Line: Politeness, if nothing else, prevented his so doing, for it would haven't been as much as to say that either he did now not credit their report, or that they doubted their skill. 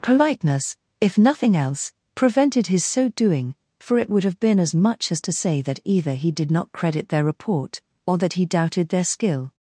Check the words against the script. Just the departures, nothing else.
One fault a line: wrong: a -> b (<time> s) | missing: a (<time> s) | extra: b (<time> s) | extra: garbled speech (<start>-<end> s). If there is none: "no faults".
wrong: haven't -> have (4.2 s)
missing: now (6.5 s)
wrong: they -> he (8.3 s)